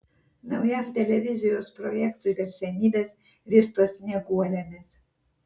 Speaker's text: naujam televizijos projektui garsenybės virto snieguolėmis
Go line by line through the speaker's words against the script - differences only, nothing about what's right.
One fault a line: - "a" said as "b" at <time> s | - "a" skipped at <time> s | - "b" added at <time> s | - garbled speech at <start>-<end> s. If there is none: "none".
none